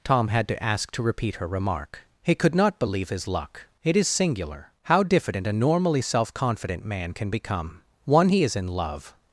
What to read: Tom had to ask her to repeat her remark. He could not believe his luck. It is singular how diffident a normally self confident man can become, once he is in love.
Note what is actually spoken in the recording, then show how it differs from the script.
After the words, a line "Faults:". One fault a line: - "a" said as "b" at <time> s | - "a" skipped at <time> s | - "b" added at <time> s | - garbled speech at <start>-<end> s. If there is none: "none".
Tom had to ask to repeat her remark. He could not believe his luck. It is singular how diffident a normally self confident man can become, one he is in love.
Faults:
- "her" skipped at 0.9 s
- "once" said as "one" at 8.1 s